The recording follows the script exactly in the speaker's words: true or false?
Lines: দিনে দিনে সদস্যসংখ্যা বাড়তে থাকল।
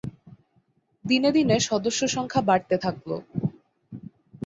true